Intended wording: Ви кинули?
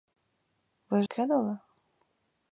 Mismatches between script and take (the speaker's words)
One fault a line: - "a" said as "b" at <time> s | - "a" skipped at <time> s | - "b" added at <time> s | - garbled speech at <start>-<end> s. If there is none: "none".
none